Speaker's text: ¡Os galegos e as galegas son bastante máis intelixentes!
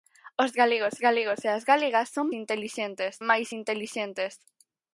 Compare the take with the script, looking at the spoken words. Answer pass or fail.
fail